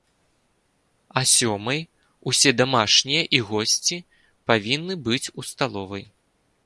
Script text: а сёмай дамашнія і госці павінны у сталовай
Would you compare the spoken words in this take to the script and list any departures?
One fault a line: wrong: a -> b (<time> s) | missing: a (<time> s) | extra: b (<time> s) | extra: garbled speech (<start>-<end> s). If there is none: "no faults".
extra: усе (2.3 s)
extra: быць (5.1 s)